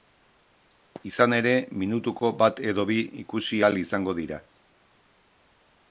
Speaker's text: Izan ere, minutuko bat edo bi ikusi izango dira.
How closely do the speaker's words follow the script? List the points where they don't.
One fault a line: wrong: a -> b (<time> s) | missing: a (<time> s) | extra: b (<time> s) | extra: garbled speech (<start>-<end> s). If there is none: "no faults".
extra: ahal (3.6 s)